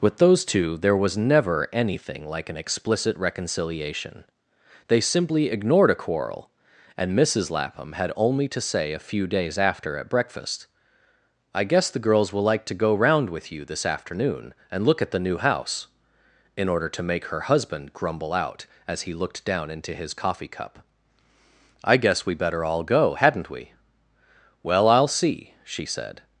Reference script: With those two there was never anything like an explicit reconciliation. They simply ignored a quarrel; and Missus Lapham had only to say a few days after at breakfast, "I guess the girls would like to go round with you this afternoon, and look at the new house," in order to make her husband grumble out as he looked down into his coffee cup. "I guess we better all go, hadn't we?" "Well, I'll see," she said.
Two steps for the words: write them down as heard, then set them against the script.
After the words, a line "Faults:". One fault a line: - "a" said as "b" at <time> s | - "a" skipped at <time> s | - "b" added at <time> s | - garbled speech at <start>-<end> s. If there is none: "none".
With those two there was never anything like an explicit reconciliation. They simply ignored a quarrel; and Missus Lapham had only to say a few days after at breakfast, "I guess the girls will like to go round with you this afternoon, and look at the new house," in order to make her husband grumble out as he looked down into his coffee cup. "I guess we better all go, hadn't we?" "Well, I'll see," she said.
Faults:
- "would" said as "will" at 12.3 s